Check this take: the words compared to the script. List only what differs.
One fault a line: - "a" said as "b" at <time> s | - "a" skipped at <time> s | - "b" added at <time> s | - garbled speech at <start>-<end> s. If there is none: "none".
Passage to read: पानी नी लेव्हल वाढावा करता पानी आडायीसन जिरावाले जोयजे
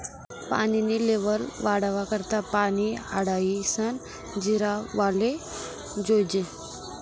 none